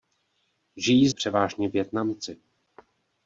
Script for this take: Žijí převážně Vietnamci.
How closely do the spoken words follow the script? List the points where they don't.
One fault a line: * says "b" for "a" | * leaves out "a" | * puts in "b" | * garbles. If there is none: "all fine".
all fine